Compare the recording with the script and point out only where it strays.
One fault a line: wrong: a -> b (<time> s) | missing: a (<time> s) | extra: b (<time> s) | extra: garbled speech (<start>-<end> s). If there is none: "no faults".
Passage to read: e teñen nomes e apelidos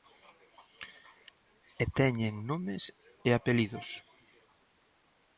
no faults